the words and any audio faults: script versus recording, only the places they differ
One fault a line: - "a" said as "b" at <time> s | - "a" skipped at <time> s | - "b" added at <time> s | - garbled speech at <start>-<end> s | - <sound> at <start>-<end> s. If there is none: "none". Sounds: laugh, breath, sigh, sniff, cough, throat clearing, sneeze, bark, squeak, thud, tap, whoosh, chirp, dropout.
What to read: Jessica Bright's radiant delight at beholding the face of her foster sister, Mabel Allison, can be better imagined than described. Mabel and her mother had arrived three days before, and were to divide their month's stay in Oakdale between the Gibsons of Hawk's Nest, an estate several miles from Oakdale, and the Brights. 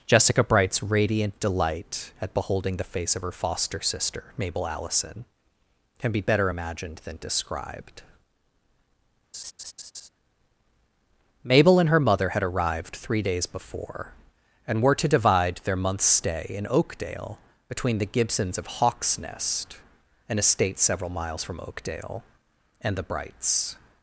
- laugh at 9.3-10.1 s